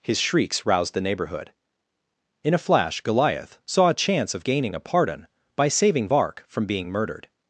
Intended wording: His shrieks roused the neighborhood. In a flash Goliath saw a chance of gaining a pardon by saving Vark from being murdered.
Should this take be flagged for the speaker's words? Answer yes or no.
no